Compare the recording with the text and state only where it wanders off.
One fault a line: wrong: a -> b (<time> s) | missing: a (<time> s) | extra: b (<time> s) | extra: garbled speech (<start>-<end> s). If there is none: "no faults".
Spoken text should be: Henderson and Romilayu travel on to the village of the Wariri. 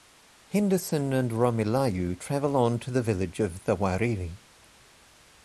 no faults